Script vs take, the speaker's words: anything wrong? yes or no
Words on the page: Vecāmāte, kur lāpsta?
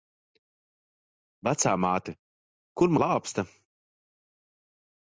no